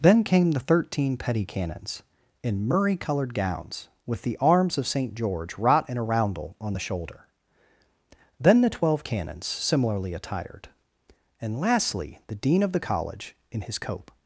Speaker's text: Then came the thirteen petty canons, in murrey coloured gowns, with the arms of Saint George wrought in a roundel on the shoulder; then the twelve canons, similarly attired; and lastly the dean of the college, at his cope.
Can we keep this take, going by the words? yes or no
no